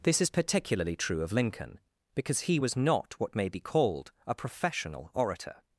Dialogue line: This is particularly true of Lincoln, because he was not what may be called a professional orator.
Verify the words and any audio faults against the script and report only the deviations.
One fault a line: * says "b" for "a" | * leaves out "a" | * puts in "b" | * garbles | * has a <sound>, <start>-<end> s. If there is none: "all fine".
all fine